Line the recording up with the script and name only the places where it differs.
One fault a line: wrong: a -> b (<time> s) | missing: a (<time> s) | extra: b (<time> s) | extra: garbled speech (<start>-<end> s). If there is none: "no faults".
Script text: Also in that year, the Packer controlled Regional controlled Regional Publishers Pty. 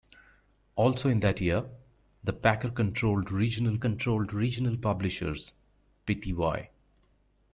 no faults